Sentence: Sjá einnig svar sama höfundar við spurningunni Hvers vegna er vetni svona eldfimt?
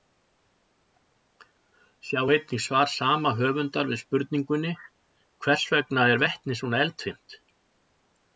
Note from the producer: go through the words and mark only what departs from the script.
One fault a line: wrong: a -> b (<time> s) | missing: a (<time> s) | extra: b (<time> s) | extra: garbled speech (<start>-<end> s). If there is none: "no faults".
no faults